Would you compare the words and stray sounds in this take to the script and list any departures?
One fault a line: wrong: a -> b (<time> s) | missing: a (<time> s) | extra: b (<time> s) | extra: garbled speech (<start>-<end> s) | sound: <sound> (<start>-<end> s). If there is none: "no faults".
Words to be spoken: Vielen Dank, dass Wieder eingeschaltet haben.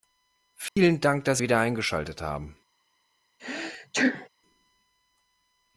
sound: dropout (0.7-0.8 s)
sound: sneeze (3.4-4.3 s)